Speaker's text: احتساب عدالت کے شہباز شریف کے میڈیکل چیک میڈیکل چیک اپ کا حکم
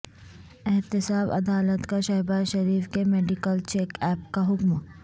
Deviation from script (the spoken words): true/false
true